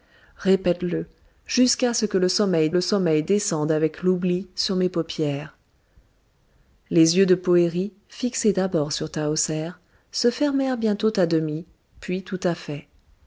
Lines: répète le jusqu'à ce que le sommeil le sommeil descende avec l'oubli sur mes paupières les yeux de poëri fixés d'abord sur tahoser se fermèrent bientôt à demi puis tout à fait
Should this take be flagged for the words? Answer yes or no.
no